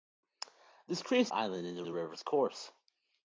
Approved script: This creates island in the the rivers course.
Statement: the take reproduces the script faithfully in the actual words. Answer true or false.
true